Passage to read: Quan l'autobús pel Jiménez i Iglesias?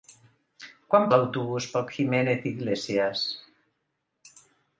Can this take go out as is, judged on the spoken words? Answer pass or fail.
pass